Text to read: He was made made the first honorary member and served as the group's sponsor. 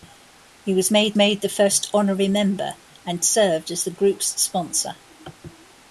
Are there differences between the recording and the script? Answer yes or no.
no